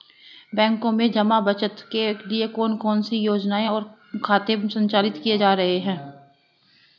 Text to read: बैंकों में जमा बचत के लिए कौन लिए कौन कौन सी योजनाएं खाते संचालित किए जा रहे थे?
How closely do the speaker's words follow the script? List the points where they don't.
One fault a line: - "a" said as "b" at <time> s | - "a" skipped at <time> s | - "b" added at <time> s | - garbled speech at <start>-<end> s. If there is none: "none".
- "लिए" skipped at 2.8 s
- "कौन" skipped at 3.0 s
- "और" added at 3.6 s
- "थे" said as "हैं" at 5.8 s